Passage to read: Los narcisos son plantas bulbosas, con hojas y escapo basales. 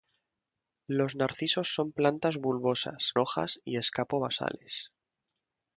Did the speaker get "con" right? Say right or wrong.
wrong